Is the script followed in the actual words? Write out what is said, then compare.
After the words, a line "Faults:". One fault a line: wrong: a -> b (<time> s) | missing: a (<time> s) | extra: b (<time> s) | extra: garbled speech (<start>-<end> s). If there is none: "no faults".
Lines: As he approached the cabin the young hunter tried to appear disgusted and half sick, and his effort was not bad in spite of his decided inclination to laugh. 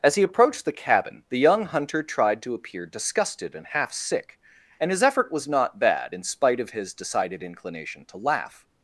As he approached the cabin the young hunter tried to appear disgusted and half sick, and his effort was not bad in spite of his decided inclination to laugh.
Faults:
no faults